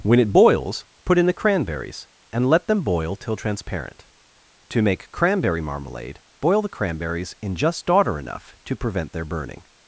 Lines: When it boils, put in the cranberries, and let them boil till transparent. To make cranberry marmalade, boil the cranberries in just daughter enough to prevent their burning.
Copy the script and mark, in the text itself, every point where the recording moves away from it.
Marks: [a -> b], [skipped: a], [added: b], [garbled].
When it boils, put in the cranberries, and let them boil till transparent. To make cranberry marmalade, boil the cranberries in just daughter enough to prevent their burning.